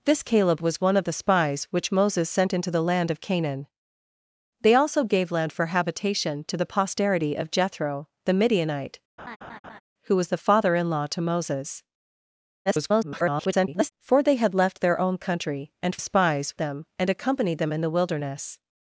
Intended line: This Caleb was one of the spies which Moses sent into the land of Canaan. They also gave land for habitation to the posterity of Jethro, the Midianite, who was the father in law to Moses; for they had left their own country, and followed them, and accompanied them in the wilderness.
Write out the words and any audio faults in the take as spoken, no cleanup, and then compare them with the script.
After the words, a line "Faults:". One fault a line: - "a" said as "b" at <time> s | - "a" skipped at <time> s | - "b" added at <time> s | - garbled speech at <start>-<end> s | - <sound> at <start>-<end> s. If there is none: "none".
This Caleb was one of the spies which Moses sent into the land of Canaan. They also gave land for habitation to the posterity of Jethro, the Midianite, who was the father in law to Moses; [garbled] for they had left their own country, and spies them, and accompanied them in the wilderness.
Faults:
- laugh at 9.2-9.8 s
- garbled speech at 12.7-13.9 s
- "followed" said as "spies" at 16.0 s